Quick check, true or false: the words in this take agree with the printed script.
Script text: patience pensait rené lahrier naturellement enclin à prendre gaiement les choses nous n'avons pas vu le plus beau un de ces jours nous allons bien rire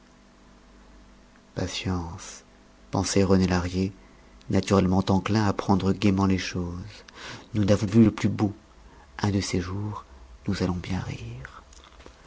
false